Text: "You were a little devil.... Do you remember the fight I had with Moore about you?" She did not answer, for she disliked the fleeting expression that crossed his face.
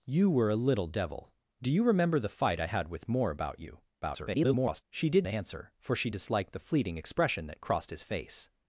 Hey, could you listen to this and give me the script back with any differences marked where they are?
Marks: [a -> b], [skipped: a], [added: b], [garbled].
"You were a little devil.... Do you remember the fight I had with Moore about you?" [garbled] She did [skipped: not] answer, for she disliked the fleeting expression that crossed his face.